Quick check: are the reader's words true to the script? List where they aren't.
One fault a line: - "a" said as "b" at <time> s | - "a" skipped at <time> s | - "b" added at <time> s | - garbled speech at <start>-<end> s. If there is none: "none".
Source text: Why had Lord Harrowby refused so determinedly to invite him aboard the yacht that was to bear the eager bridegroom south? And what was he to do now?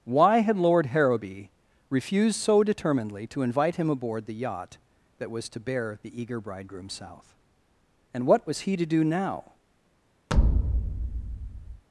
none